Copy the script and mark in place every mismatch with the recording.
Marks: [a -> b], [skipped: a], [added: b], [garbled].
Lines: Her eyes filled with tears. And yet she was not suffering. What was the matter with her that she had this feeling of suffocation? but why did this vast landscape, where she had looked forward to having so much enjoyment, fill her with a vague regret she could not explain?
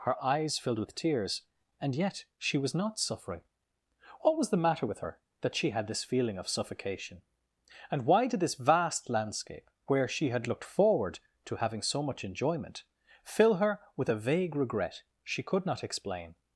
Her eyes filled with tears. And yet she was not suffering. What was the matter with her that she had this feeling of suffocation? [but -> and] why did this vast landscape, where she had looked forward to having so much enjoyment, fill her with a vague regret she could not explain?